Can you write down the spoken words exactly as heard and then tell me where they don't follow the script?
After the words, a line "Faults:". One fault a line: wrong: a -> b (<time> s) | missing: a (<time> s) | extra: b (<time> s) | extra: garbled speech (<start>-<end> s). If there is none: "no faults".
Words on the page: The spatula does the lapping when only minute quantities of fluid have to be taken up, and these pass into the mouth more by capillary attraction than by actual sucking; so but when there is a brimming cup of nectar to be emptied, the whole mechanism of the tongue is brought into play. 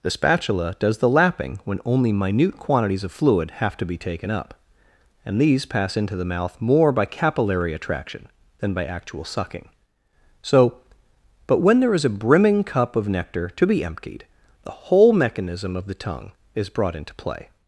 The spatula does the lapping when only minute quantities of fluid have to be taken up, and these pass into the mouth more by capillary attraction than by actual sucking; so but when there is a brimming cup of nectar to be emptied, the whole mechanism of the tongue is brought into play.
Faults:
no faults